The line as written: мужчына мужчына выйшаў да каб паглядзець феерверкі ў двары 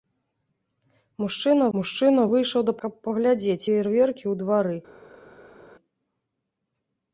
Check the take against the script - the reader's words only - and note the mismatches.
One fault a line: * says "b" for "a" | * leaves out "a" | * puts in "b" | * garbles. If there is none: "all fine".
all fine